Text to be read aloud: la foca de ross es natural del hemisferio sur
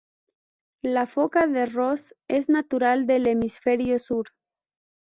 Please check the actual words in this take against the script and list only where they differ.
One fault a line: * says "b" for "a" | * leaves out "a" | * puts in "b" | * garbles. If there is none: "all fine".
all fine